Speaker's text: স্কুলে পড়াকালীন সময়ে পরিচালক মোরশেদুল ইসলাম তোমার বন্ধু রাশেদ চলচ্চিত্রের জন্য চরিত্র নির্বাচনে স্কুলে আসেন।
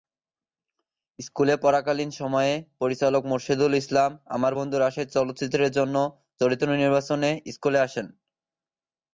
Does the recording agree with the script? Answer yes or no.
no